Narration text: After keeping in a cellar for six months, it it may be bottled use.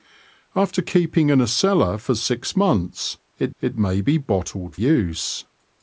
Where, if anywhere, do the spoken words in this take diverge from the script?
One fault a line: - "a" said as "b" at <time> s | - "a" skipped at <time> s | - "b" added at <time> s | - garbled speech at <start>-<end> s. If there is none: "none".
none